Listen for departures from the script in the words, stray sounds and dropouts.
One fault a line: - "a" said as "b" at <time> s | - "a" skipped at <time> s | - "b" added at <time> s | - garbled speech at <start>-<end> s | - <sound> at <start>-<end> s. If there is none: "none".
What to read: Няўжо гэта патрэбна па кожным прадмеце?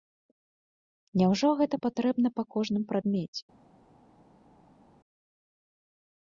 none